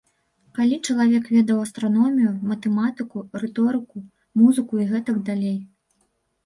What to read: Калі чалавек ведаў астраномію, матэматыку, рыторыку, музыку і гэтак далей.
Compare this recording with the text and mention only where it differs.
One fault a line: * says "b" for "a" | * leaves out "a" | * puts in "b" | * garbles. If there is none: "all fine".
all fine